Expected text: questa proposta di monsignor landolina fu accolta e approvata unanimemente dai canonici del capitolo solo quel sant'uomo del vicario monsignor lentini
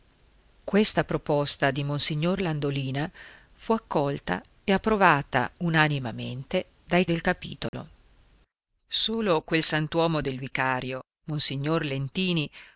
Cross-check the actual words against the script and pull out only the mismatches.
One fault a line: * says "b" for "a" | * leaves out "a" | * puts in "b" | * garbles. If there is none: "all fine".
* leaves out "canonici"